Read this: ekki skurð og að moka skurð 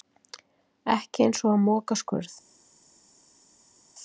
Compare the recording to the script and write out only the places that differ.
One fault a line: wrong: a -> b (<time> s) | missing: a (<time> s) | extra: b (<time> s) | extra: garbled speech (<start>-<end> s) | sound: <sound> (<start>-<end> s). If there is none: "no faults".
wrong: skurð -> eins (1.3 s)